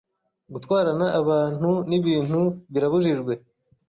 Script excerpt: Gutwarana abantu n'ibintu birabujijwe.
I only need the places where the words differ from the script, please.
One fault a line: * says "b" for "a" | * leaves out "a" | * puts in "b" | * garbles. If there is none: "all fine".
all fine